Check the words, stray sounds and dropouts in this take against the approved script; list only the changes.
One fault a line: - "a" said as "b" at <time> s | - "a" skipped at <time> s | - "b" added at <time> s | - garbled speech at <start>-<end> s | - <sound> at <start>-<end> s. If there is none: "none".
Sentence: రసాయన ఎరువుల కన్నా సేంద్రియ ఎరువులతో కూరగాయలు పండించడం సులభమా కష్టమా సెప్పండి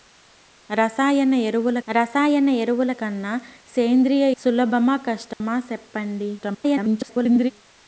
- "రసాయన ఎరువుల" added at 1.9 s
- "ఎరువులతో కూరగాయలు పండించడం" skipped at 4.3 s
- dropout at 5.3-5.4 s
- garbled speech at 6.4-7.5 s